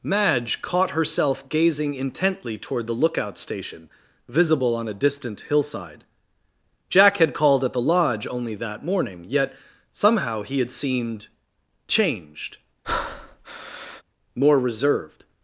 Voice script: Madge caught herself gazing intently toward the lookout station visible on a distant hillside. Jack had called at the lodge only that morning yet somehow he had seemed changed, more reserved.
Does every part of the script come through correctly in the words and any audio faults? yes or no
no